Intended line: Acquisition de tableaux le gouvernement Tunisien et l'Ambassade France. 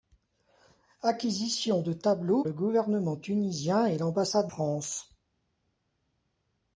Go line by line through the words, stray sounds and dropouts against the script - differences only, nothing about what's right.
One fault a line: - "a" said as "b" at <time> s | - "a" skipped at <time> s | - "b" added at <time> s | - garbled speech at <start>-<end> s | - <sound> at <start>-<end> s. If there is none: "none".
none